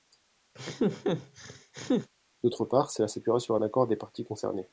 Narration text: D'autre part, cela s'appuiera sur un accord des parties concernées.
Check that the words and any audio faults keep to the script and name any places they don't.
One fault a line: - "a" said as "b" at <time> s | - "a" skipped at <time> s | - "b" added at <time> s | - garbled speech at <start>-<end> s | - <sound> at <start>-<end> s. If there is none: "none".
- laugh at 0.5-2.1 s